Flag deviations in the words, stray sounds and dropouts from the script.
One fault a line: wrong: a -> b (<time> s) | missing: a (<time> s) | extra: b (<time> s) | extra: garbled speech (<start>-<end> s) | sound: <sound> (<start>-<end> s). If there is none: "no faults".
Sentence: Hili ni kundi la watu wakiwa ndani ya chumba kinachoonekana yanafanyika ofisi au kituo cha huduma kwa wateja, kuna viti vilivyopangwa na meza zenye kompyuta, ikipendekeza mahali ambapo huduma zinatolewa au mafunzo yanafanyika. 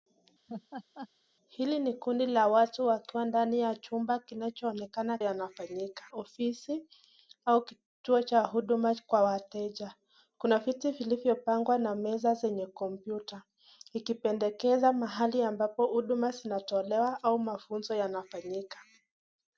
sound: laugh (0.5-1.1 s)